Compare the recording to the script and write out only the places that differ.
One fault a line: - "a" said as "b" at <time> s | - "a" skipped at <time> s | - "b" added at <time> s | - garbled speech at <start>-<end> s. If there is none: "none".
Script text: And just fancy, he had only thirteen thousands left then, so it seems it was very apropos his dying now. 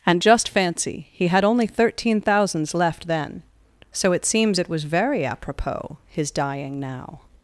none